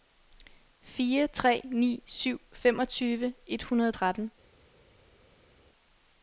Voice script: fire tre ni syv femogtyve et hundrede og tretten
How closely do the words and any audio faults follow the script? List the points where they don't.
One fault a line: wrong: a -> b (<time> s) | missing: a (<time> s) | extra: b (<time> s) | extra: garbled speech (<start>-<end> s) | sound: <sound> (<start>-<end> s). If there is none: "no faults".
no faults